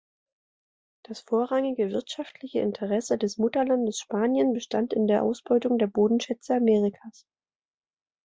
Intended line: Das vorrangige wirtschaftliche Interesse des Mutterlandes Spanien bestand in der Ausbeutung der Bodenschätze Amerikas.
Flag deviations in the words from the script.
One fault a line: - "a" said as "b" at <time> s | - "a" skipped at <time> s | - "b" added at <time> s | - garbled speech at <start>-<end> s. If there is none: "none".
none